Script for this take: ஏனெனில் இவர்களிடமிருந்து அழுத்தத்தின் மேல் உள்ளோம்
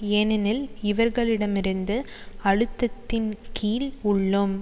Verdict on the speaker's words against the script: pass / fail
fail